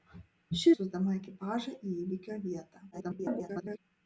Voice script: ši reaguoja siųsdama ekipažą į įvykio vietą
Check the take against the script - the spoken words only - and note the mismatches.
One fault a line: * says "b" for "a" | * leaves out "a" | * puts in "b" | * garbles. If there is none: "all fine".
* leaves out "reaguoja"
* garbles